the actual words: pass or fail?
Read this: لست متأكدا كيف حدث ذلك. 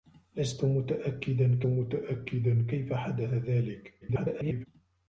fail